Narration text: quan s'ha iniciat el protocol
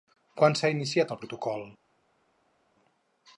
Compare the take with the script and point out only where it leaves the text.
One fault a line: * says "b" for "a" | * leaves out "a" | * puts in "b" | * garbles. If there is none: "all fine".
all fine